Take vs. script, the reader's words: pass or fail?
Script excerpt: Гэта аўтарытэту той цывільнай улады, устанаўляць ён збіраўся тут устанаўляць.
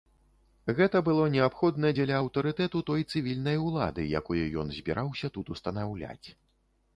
fail